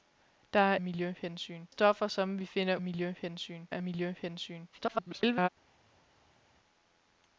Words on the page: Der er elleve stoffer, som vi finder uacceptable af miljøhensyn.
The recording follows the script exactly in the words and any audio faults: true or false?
false